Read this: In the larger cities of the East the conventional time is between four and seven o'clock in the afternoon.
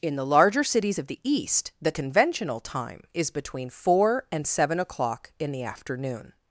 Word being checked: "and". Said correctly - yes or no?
yes